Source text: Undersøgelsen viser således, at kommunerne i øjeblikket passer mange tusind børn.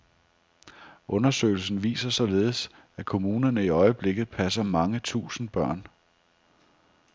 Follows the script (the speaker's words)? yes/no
yes